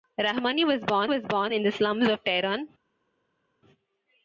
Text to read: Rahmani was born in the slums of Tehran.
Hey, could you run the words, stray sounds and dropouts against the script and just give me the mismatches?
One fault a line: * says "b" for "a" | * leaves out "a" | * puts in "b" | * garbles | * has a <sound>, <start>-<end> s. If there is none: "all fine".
* puts in "was born"